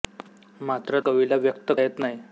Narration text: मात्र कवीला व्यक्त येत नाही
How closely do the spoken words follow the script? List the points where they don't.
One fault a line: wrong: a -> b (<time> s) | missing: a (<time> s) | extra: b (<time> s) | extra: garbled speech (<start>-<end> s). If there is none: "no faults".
no faults